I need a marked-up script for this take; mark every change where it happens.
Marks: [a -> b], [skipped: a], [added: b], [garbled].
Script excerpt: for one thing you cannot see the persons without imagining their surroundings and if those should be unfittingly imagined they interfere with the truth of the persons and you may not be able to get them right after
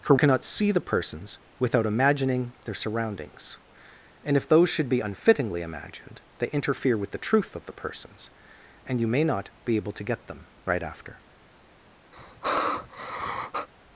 for [skipped: one thing you] cannot see the persons without imagining their surroundings and if those should be unfittingly imagined they interfere with the truth of the persons and you may not be able to get them right after